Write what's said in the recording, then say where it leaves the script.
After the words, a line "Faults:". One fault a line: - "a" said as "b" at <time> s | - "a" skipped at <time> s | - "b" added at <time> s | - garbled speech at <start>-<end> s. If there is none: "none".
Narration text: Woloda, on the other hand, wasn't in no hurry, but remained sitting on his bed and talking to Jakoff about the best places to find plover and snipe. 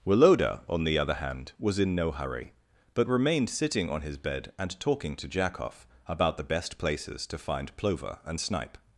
Woloda, on the other hand, was in no hurry, but remained sitting on his bed and talking to Jakoff about the best places to find plover and snipe.
Faults:
- "wasn't" said as "was" at 1.6 s